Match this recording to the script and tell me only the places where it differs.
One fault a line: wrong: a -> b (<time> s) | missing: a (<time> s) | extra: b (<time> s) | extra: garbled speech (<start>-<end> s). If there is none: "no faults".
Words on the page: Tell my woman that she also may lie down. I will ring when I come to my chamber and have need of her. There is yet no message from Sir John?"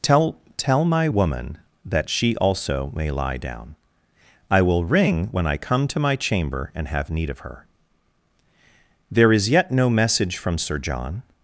extra: tell (0.6 s)